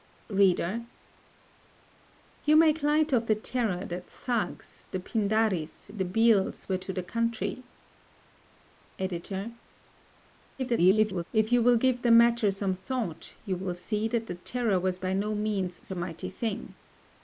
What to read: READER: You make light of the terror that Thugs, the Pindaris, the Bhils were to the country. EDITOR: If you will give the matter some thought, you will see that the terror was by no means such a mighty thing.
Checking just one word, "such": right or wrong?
wrong